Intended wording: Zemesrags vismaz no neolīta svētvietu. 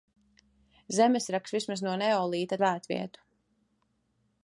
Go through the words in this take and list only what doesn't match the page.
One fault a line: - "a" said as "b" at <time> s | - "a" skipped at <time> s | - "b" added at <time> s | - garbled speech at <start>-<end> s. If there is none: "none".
none